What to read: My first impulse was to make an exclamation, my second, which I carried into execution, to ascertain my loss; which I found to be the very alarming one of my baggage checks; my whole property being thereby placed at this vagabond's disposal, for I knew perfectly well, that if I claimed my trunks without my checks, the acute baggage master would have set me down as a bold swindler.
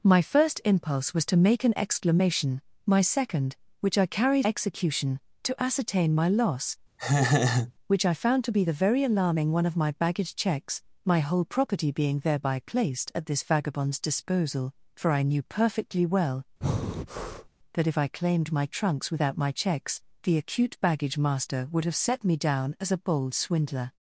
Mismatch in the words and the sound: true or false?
true